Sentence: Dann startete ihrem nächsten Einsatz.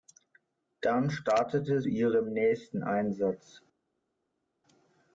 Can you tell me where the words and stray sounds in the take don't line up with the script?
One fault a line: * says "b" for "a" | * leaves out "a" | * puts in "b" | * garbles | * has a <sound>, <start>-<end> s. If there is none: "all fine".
all fine